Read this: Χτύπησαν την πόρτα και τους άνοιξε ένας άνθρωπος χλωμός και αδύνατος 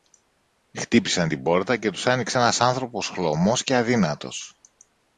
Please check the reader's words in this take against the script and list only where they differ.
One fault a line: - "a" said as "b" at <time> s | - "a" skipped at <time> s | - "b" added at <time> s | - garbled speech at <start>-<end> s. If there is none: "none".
none